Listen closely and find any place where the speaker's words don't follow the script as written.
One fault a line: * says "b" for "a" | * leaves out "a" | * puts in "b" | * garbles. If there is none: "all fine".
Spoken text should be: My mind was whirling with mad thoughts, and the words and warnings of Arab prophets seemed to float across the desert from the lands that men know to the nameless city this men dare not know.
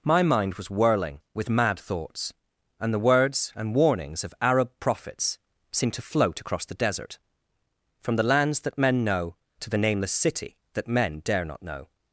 * says "that" for "this"